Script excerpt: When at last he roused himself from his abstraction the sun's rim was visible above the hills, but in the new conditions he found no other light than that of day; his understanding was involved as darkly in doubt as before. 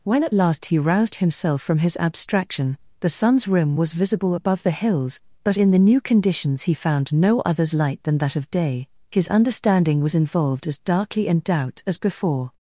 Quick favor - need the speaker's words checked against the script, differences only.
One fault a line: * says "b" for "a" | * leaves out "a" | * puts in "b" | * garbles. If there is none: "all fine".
* says "others" for "other"